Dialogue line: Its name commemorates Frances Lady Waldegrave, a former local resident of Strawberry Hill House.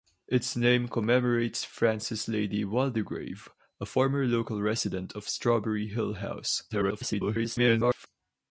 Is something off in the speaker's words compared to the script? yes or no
yes